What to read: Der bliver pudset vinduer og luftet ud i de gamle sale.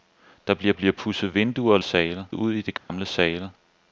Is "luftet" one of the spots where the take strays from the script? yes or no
yes